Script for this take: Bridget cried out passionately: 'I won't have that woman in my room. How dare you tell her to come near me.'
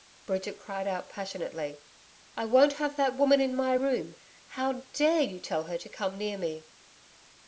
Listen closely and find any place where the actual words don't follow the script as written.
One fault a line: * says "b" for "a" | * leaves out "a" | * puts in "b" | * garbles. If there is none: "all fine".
all fine